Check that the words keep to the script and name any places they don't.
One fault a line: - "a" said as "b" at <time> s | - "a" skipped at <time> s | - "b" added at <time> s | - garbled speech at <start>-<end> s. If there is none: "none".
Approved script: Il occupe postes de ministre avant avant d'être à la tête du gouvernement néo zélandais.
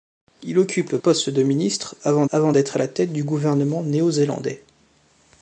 none